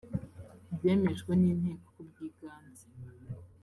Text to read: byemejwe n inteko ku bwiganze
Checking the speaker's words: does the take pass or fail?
pass